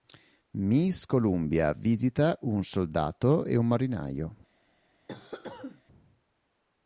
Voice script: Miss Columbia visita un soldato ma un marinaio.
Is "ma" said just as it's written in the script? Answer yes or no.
no